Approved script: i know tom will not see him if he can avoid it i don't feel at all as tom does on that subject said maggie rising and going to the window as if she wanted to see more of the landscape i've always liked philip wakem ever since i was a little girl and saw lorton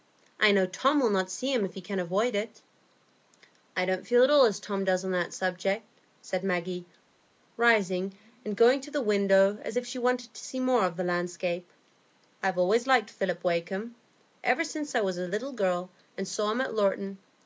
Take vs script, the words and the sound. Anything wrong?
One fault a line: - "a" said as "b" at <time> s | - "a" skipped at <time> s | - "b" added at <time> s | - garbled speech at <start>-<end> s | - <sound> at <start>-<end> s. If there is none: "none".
- "him at" added at 16.5 s